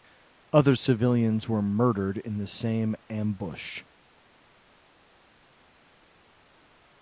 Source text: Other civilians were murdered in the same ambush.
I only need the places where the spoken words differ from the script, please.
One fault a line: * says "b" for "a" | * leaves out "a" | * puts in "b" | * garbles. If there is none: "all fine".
all fine